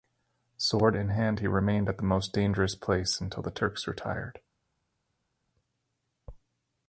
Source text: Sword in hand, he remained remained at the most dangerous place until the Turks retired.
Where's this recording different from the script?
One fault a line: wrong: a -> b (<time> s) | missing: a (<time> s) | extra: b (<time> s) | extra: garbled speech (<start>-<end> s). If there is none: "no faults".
missing: remained (1.9 s)